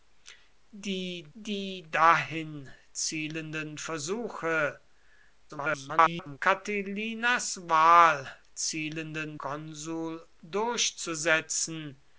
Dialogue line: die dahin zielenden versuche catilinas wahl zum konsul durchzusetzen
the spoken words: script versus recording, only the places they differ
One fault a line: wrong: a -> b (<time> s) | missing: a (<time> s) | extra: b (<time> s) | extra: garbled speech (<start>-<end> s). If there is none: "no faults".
extra: die (1.3 s)
extra: garbled speech (5.5-6.4 s)
wrong: zum -> zielenden (8.5 s)